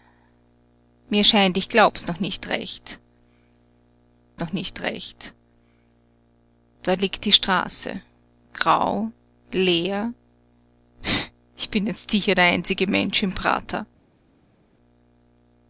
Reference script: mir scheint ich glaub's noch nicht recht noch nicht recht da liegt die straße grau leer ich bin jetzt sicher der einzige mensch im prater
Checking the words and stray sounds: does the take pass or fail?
pass